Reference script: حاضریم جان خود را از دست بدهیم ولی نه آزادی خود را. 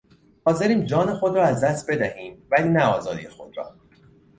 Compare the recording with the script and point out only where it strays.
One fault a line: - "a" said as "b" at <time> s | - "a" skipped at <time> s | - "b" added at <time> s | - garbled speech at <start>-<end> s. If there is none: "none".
none